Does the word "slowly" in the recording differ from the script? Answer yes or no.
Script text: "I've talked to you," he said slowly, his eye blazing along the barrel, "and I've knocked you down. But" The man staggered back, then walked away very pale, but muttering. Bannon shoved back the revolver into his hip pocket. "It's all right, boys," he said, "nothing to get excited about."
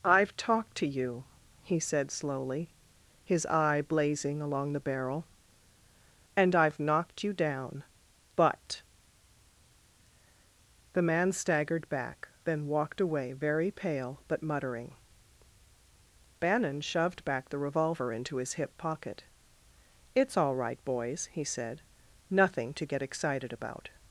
no